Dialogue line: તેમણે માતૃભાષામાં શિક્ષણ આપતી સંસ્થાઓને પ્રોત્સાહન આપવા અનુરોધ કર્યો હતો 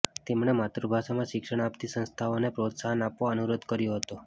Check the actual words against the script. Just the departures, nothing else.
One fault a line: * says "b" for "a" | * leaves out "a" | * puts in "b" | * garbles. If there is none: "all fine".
all fine